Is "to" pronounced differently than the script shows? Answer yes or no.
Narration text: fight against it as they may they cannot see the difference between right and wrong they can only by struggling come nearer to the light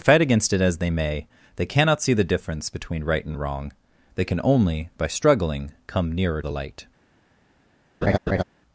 yes